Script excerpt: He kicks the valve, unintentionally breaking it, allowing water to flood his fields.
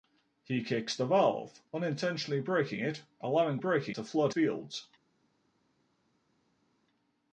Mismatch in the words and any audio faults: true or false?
true